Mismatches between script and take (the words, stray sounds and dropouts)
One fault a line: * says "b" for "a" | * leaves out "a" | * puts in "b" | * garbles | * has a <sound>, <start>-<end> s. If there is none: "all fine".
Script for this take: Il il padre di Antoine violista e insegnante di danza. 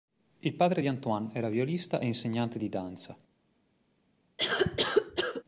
* leaves out "il"
* puts in "era"
* has a cough, 4.4-5.4 s